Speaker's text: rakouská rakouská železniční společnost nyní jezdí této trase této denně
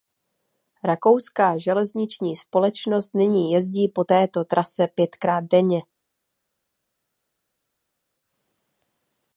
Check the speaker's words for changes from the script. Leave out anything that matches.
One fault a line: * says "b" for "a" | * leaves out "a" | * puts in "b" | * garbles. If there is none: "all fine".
* leaves out "rakouská"
* puts in "po"
* says "pětkrát" for "této"